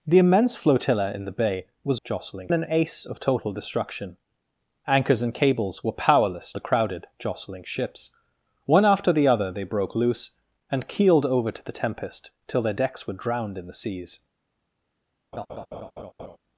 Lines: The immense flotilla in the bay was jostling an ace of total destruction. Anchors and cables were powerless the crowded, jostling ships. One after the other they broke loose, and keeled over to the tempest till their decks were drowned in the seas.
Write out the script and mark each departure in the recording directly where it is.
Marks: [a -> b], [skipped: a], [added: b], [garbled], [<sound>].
The immense flotilla in the bay was jostling an ace of total destruction. Anchors and cables were powerless the crowded, jostling ships. One after the other they broke loose, and keeled over to the tempest till their decks were drowned in the seas. [laugh]